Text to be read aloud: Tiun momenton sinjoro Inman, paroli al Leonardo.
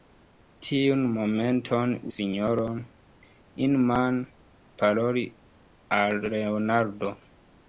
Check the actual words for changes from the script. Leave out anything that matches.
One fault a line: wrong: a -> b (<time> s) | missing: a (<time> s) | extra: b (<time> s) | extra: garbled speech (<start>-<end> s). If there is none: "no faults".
no faults